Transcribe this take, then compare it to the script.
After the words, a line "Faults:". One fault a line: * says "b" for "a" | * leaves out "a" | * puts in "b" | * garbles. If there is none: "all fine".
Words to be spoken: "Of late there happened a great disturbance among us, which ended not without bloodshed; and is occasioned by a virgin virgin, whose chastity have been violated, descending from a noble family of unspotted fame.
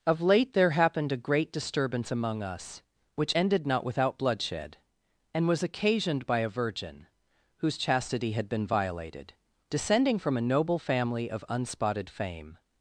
"Of late there happened a great disturbance among us, which ended not without bloodshed; and was occasioned by a virgin, whose chastity had been violated, descending from a noble family of unspotted fame.
Faults:
* says "was" for "is"
* leaves out "virgin"
* says "had" for "have"